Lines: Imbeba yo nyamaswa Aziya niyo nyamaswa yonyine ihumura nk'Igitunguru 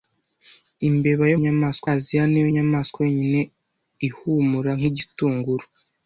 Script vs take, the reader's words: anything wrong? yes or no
no